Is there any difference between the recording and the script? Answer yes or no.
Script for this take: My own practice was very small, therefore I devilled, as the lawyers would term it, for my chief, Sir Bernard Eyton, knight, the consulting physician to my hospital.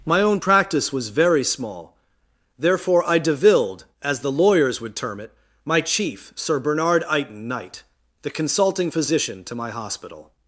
yes